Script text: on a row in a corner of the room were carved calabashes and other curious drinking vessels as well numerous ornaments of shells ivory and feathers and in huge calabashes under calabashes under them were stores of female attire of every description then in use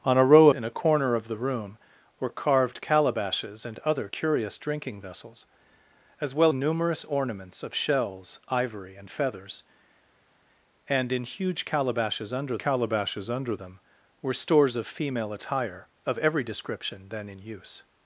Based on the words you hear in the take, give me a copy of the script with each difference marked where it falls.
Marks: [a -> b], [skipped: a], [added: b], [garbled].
on a row in a corner of the room were carved calabashes and other curious drinking vessels as well numerous ornaments of shells ivory and feathers and in huge calabashes under calabashes under them were stores of female attire of every description then in use